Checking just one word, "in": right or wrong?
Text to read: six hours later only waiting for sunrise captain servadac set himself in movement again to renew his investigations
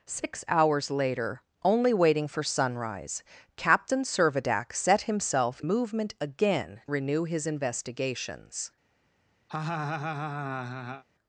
wrong